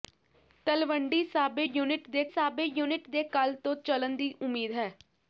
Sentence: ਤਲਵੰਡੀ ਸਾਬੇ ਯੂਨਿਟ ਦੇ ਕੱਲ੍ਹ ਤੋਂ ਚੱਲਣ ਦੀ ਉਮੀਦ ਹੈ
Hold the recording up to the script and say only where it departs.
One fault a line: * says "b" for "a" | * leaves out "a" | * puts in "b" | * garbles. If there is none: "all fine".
* puts in "ਸਾਬੇ ਯੂਨਿਟ ਦੇ"